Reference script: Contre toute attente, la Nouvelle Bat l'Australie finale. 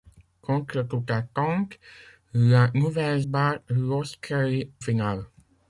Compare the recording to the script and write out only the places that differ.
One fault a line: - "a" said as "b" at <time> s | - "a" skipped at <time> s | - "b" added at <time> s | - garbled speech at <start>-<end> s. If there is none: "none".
none